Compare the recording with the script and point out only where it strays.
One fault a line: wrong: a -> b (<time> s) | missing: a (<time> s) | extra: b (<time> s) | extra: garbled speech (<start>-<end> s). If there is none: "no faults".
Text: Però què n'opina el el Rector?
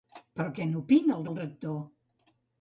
no faults